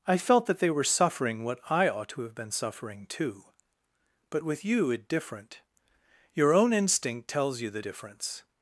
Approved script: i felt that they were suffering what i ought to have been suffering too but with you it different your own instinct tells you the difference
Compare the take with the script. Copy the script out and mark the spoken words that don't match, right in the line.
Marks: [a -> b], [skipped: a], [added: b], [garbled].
i felt that they were suffering what i ought to have been suffering too but with you it different your own instinct tells you the difference